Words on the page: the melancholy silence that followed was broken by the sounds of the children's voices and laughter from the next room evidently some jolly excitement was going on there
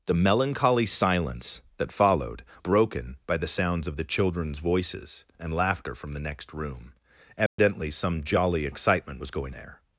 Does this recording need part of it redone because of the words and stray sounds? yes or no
yes